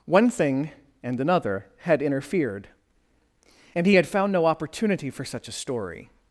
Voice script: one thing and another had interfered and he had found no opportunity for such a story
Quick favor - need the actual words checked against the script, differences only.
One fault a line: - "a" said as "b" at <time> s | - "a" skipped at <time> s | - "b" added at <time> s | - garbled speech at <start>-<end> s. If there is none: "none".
none